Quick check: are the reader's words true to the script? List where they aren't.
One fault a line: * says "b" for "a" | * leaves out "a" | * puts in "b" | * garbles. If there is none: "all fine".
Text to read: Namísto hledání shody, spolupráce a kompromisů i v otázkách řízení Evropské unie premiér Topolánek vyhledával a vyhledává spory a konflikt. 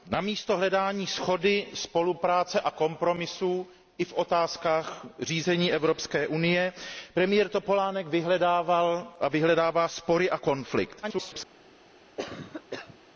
* garbles